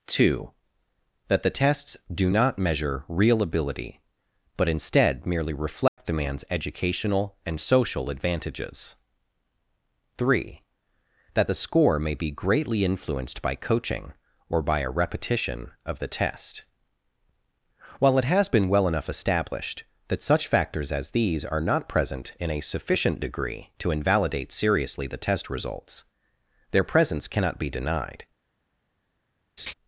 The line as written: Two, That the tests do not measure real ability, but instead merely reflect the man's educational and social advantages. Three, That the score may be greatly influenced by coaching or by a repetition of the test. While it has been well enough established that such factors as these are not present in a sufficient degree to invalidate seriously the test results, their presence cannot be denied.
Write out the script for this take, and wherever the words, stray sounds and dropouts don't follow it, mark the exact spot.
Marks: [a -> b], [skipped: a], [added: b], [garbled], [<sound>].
Two, That the tests do not measure real ability, but instead merely reflect [dropout] the man's educational and social advantages. Three, That the score may be greatly influenced by coaching or by a repetition of the test. While it has been well enough established that such factors as these are not present in a sufficient degree to invalidate seriously the test results, their presence cannot be denied. [laugh]